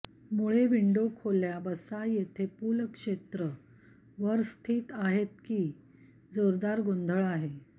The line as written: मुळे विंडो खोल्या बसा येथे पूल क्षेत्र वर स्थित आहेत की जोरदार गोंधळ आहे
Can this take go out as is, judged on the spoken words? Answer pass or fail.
pass